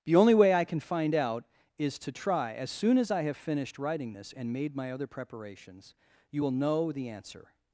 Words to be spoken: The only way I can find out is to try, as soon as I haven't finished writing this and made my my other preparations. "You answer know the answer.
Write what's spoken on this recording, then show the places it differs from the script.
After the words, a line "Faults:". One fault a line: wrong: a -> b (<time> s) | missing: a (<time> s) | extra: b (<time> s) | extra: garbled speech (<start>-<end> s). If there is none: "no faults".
The only way I can find out is to try, as soon as I have finished writing this and made my other preparations. "You will know the answer.
Faults:
wrong: haven't -> have (3.2 s)
missing: my (4.9 s)
wrong: answer -> will (6.4 s)